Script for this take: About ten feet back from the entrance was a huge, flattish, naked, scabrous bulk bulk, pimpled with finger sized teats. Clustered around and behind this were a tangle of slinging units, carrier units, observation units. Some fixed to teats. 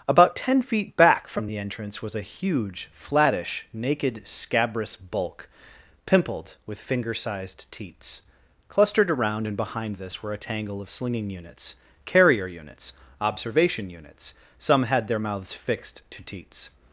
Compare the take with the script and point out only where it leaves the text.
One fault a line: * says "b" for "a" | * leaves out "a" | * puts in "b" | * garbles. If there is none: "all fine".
* leaves out "bulk"
* puts in "had their mouths"